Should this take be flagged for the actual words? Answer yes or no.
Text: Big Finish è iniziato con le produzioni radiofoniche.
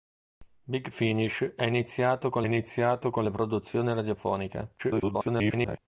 yes